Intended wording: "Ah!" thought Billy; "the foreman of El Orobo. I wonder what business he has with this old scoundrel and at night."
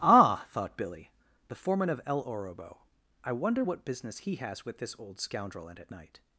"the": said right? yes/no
yes